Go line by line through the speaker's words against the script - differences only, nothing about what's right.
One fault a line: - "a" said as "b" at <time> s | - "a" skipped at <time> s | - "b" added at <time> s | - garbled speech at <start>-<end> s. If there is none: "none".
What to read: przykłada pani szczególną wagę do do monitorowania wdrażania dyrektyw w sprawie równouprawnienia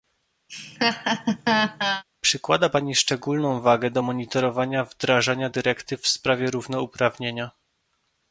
- "do" skipped at 4.0 s